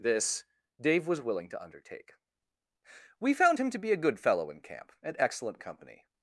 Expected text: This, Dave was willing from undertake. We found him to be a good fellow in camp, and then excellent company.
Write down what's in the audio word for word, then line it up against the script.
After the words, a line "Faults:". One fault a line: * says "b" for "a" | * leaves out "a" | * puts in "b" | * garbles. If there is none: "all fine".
This, Dave was willing to undertake. We found him to be a good fellow in camp, and excellent company.
Faults:
* says "to" for "from"
* leaves out "then"